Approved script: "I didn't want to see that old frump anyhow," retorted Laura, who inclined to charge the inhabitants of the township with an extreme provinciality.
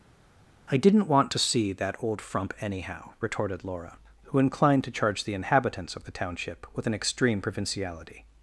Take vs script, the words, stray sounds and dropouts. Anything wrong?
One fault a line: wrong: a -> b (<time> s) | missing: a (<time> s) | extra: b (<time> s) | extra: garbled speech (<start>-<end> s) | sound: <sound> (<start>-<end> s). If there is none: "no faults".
no faults